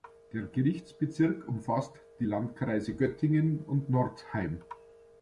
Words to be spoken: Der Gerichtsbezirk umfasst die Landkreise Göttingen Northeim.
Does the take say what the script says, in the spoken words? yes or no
no